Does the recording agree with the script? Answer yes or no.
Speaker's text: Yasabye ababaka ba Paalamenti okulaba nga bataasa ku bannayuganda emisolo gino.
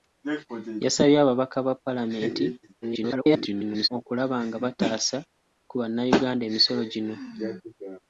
no